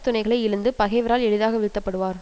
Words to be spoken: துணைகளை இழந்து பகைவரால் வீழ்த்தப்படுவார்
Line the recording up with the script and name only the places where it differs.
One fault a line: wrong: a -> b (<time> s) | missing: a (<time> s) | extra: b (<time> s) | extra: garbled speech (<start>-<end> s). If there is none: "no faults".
extra: எளிதாக (1.3 s)